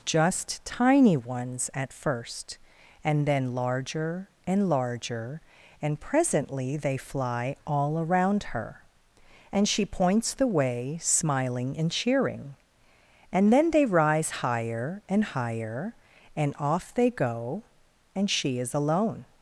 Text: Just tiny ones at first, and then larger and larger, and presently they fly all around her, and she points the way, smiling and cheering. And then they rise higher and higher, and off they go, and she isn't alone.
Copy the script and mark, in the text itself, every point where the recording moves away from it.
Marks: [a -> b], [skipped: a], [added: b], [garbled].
Just tiny ones at first, and then larger and larger, and presently they fly all around her, and she points the way, smiling and cheering. And then they rise higher and higher, and off they go, and she [isn't -> is] alone.